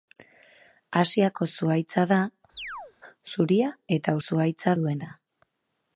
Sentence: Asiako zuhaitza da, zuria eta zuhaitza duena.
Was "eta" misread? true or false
false